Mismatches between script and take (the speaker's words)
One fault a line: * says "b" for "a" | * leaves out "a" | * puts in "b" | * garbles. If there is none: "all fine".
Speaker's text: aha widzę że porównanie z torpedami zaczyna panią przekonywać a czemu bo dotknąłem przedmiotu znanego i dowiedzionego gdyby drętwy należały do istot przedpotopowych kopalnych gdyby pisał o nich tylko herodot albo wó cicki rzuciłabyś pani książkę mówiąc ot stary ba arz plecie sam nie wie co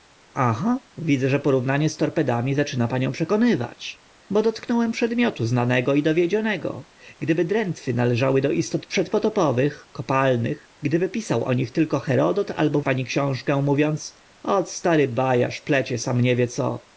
* leaves out "a czemu"
* leaves out "wó cicki rzuciłabyś"